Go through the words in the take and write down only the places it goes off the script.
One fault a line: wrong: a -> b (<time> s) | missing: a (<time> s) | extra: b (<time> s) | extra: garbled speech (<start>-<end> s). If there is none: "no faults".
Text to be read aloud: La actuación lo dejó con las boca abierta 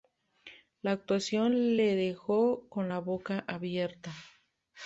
wrong: lo -> le (1.8 s)
wrong: las -> la (2.9 s)